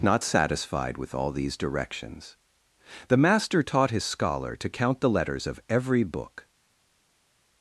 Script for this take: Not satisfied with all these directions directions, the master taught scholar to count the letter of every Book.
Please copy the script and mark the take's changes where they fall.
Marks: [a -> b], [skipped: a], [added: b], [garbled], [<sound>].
Not satisfied with all these directions [skipped: directions,] the master taught [added: his] scholar to count the [letter -> letters] of every Book.